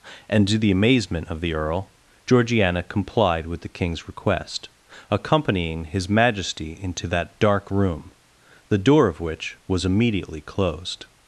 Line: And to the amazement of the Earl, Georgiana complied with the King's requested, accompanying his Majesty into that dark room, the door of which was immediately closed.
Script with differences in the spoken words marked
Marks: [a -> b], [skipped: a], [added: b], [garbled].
And to the amazement of the Earl, Georgiana complied with the King's [requested, -> request] accompanying his Majesty into that dark room, the door of which was immediately closed.